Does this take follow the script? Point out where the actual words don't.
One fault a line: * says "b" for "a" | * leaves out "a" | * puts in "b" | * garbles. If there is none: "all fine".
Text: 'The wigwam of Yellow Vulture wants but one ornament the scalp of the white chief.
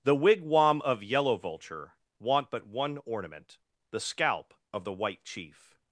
* says "want" for "wants"